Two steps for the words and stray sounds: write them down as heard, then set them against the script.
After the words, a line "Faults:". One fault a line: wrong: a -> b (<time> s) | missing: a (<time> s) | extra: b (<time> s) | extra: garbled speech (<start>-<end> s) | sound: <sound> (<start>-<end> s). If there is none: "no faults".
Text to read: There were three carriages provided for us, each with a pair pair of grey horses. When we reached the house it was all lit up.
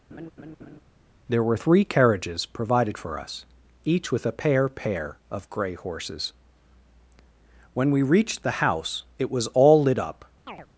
There were three carriages provided for us, each with a pair pair of grey horses. When we reached the house it was all lit up.
Faults:
sound: laugh (0.1-0.8 s)
sound: chirp (10.5-10.7 s)